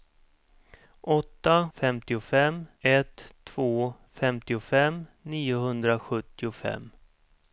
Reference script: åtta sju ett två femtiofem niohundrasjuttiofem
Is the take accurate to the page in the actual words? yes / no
no